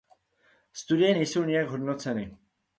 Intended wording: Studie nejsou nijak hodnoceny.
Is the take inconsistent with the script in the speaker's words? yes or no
no